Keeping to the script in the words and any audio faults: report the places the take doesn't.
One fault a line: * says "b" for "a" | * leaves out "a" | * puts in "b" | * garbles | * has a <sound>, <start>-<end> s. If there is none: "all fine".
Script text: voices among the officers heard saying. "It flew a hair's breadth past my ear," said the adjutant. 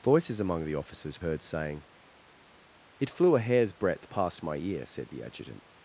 all fine